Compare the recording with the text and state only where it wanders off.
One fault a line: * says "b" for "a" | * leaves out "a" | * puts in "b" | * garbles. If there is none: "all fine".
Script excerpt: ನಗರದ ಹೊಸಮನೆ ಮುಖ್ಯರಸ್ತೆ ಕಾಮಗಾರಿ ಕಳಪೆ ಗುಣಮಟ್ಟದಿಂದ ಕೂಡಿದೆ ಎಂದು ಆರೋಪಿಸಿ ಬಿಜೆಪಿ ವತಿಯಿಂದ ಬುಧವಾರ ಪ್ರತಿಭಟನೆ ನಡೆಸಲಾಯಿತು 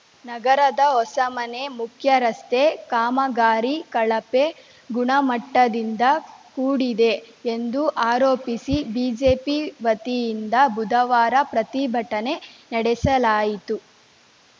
all fine